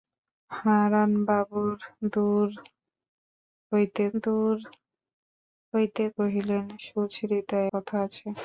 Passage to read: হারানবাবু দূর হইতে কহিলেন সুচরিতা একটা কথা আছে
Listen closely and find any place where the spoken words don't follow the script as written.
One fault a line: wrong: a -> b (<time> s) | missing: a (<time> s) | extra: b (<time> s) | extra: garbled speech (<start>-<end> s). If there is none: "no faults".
extra: দূর হইতে (4.2 s)
missing: একটা (7.6 s)